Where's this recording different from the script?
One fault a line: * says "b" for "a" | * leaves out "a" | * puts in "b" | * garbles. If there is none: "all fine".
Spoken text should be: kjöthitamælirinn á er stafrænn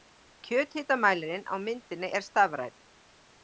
* puts in "myndinni"